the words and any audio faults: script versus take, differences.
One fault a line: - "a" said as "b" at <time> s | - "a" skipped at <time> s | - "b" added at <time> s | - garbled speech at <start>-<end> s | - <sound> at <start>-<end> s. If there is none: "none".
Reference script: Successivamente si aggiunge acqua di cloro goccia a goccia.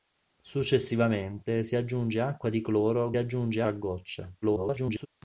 - "goccia" said as "aggiunge" at 3.2 s
- garbled speech at 4.4-5.1 s